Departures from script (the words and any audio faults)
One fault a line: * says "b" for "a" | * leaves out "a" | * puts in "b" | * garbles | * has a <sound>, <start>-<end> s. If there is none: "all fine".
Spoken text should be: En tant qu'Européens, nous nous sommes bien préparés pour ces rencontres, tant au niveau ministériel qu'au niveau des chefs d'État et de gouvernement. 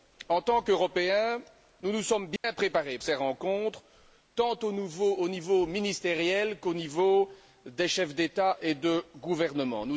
* has a dropout, 2.4-2.4 s
* leaves out "pour"